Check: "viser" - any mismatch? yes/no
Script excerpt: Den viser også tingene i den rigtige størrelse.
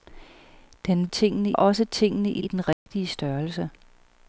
yes